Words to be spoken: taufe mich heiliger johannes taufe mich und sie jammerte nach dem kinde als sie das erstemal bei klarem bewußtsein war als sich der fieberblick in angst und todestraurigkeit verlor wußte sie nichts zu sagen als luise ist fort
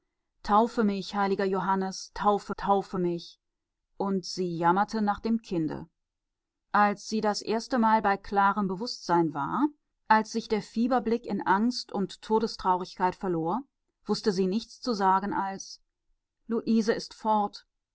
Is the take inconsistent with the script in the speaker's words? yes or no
yes